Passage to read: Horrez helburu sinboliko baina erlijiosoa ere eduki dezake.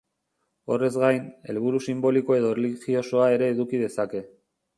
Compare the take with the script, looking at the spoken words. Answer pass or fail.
fail